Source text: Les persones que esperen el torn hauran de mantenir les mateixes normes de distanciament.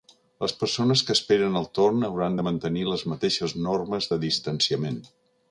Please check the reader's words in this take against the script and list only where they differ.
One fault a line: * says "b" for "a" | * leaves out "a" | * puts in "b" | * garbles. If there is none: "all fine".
all fine